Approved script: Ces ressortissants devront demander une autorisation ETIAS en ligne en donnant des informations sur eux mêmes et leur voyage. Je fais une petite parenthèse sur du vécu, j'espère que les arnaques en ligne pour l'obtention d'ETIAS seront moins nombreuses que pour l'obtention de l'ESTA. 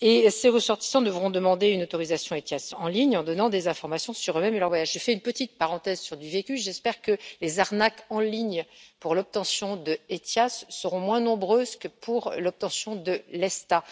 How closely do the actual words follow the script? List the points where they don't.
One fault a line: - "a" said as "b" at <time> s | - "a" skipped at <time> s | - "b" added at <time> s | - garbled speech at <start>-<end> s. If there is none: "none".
none